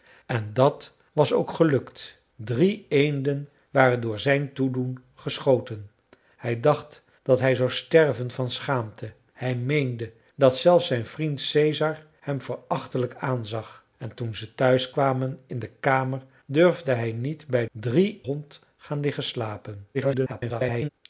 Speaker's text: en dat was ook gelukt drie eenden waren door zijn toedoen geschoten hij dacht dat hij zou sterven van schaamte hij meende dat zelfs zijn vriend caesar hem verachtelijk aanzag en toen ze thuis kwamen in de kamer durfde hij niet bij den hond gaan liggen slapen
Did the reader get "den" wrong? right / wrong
wrong